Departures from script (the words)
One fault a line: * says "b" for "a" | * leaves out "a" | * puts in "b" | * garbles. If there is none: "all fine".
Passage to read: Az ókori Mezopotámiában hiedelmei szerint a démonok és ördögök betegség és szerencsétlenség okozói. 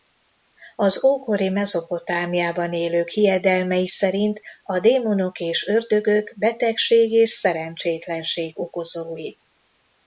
* puts in "élők"